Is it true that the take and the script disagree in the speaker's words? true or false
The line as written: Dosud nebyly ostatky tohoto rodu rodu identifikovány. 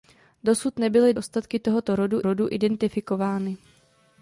false